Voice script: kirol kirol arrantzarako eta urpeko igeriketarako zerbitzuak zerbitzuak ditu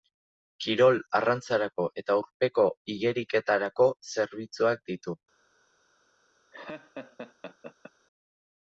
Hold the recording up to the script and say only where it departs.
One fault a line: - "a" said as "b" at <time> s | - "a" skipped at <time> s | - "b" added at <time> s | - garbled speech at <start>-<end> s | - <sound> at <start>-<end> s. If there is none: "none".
- "kirol" skipped at 1.0 s
- "zerbitzuak" skipped at 4.9 s
- laugh at 6.5-7.9 s